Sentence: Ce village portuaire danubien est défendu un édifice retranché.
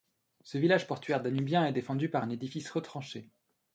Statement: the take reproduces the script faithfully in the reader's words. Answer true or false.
false